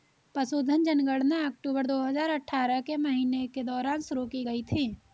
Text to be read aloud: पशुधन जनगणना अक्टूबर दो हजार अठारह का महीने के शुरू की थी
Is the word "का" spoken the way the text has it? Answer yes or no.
no